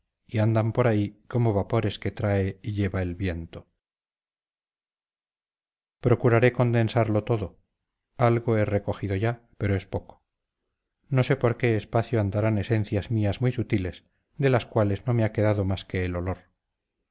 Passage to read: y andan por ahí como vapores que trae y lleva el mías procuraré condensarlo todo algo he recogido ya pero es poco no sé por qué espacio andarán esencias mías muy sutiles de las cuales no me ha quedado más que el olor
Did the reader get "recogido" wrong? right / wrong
right